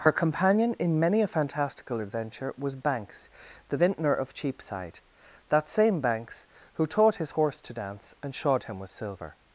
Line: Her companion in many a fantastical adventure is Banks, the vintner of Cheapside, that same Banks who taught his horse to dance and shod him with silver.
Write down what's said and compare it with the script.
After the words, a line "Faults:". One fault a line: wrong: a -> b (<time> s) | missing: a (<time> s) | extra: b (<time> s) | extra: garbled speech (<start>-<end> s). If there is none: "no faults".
Her companion in many a fantastical adventure was Banks, the vintner of Cheapside, that same Banks who taught his horse to dance and shod him with silver.
Faults:
wrong: is -> was (2.6 s)